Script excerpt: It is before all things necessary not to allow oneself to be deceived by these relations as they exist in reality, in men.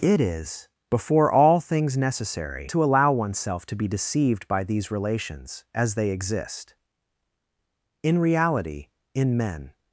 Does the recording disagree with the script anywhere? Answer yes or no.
yes